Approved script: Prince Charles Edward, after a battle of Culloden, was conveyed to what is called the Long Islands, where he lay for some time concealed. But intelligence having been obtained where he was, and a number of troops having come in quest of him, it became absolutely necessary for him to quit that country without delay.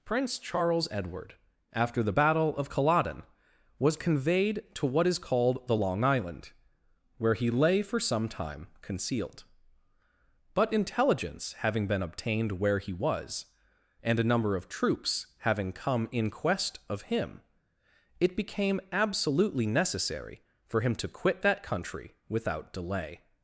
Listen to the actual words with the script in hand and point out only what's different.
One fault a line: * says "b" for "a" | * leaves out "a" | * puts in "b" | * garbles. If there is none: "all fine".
* says "the" for "a"
* says "Island" for "Islands"